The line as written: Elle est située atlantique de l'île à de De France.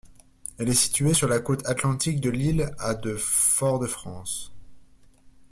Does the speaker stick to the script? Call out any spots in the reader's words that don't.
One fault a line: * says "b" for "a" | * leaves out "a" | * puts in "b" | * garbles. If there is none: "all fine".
* puts in "sur la côte"
* puts in "Fort"